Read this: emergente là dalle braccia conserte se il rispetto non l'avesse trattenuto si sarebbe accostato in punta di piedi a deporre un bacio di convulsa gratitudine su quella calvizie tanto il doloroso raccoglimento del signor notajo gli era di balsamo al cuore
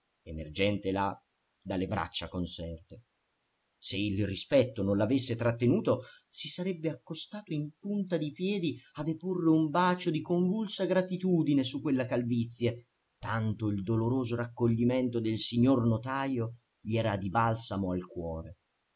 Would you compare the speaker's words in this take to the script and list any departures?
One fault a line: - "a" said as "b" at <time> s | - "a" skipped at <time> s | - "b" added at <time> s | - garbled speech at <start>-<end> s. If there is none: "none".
none